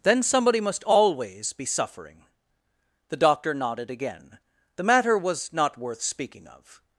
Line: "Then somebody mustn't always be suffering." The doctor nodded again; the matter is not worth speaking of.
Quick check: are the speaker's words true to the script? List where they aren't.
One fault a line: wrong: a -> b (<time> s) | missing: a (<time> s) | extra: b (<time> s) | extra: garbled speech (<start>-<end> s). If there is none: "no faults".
wrong: mustn't -> must (0.6 s)
wrong: is -> was (5.2 s)